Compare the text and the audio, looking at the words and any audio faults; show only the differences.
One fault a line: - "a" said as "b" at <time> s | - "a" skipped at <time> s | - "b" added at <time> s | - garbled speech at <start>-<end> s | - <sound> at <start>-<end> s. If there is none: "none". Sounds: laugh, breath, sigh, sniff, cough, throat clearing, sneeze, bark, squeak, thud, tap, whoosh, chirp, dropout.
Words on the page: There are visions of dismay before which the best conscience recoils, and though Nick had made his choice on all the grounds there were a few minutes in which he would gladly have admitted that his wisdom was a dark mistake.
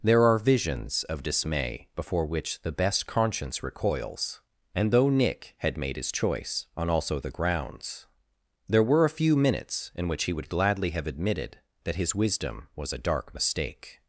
- "all" said as "also" at 6.9 s